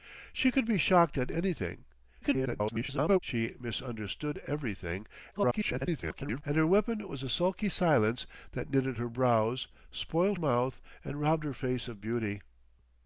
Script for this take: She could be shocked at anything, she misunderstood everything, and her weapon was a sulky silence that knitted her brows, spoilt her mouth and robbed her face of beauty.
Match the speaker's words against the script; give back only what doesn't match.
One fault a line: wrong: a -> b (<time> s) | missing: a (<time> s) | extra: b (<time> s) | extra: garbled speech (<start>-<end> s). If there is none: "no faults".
extra: garbled speech (2.2-3.2 s)
extra: garbled speech (5.3-6.4 s)
missing: her (10.4 s)